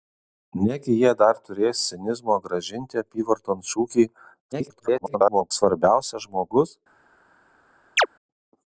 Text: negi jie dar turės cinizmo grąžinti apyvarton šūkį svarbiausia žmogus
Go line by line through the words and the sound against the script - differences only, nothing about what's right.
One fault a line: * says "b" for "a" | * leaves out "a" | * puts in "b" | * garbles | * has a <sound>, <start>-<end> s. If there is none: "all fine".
* garbles
* has a chirp, 8.0-8.1 s